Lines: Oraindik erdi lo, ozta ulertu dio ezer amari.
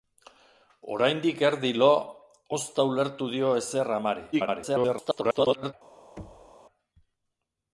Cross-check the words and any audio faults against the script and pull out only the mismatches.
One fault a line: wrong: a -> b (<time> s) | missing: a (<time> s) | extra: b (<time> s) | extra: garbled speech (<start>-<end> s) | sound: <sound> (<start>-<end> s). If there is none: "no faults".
extra: garbled speech (4.3-5.7 s)
sound: thud (6.2-6.5 s)